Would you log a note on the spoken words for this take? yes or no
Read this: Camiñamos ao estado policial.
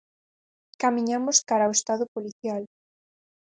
yes